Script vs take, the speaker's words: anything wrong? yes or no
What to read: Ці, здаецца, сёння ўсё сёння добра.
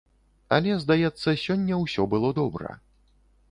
yes